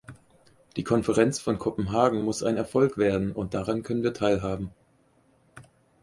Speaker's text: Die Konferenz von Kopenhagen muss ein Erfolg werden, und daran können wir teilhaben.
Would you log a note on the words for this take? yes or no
no